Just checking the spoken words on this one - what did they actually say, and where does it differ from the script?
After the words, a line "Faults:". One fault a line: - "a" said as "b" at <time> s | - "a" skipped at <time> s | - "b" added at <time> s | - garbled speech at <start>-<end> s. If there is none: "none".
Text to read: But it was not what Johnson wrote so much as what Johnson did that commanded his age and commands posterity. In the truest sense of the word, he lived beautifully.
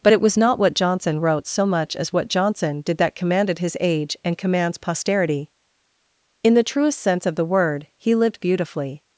But it was not what Johnson wrote so much as what Johnson did that commanded his age and commands posterity. In the truest sense of the word, he lived beautifully.
Faults:
none